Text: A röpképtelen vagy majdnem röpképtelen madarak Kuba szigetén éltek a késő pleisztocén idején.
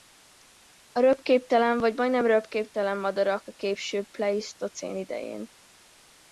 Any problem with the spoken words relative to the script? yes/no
yes